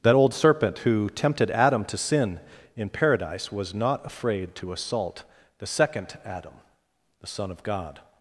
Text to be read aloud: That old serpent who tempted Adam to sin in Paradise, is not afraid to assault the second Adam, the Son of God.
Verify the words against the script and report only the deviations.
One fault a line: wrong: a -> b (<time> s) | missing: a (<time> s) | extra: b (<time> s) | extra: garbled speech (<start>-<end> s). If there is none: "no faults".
wrong: is -> was (3.5 s)